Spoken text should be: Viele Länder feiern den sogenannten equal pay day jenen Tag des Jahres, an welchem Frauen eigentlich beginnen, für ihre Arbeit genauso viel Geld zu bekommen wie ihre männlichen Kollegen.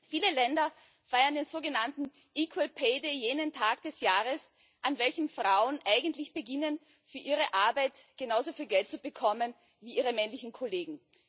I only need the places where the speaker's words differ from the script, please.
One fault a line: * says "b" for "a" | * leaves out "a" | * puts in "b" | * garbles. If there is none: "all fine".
all fine